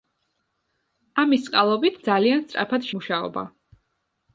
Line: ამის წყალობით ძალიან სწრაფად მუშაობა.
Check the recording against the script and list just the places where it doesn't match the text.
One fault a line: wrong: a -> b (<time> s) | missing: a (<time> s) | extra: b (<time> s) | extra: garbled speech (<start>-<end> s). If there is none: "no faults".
no faults